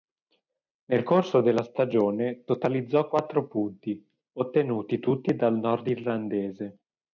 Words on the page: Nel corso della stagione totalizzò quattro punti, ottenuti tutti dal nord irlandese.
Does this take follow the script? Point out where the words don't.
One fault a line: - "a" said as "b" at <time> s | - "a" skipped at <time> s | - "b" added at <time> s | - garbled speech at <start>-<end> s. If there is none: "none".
none